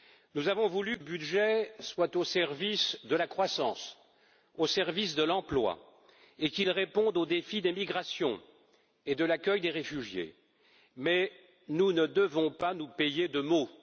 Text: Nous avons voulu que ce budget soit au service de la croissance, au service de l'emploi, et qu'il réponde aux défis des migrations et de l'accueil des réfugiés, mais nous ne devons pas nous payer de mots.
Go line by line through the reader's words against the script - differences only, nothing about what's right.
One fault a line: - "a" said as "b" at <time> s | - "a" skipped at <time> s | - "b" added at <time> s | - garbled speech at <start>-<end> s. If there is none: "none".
- "que ce" skipped at 1.0 s